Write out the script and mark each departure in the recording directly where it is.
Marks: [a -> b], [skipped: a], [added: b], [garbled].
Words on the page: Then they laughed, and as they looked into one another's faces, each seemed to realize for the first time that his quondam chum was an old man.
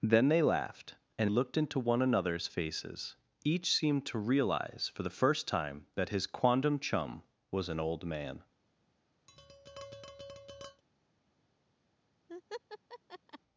Then they laughed, and [skipped: as they] looked into one another's faces, each seemed to realize for the first time that his quondam chum was an old man.